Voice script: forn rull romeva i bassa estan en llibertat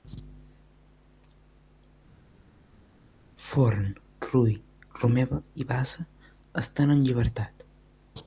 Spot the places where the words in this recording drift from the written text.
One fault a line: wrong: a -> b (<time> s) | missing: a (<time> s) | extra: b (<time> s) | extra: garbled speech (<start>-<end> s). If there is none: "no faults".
no faults